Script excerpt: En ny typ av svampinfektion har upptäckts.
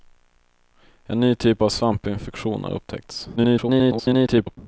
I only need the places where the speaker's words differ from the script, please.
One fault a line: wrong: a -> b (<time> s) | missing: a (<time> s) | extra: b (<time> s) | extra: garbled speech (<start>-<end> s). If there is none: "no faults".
extra: garbled speech (3.4-4.6 s)